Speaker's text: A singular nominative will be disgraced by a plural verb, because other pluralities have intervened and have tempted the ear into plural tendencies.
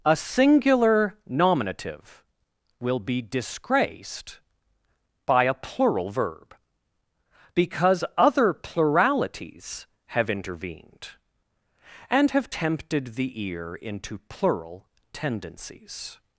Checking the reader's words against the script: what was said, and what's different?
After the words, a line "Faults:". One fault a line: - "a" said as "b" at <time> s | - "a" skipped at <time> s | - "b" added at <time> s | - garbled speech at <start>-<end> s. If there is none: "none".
A singular nominative will be disgraced by a plural verb, because other pluralities have intervened and have tempted the ear into plural tendencies.
Faults:
none